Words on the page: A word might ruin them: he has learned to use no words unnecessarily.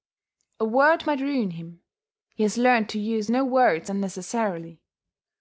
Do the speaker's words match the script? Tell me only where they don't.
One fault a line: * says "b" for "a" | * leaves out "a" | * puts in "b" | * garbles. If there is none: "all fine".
* says "him" for "them"